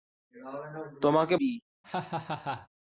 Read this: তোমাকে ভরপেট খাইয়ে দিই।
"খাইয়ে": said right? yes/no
no